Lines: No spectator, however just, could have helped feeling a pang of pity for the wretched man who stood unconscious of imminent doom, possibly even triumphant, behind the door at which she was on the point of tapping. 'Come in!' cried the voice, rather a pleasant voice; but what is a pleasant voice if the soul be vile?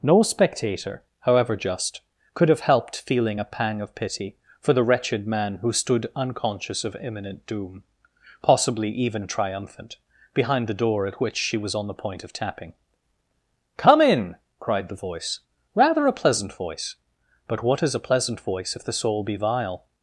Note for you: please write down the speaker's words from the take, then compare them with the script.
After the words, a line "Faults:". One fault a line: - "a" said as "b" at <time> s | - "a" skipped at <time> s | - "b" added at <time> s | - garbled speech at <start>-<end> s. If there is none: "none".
No spectator, however just, could have helped feeling a pang of pity for the wretched man who stood unconscious of imminent doom, possibly even triumphant, behind the door at which she was on the point of tapping. 'Come in!' cried the voice, rather a pleasant voice; but what is a pleasant voice if the soul be vile?
Faults:
none